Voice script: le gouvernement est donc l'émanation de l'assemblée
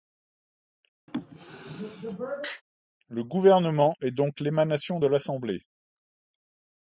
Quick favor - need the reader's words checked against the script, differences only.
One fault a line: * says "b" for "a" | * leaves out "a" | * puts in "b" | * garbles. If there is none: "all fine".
all fine